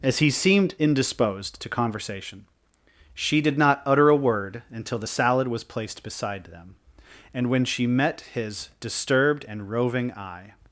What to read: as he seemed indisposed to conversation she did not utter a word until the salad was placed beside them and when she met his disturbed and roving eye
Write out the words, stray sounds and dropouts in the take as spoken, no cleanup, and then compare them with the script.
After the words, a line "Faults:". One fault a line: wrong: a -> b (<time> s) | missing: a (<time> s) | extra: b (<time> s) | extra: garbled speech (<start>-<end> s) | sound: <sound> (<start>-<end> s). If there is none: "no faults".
as he seemed indisposed to conversation she did not utter a word until the salad was placed beside them and when she met his disturbed and roving eye
Faults:
no faults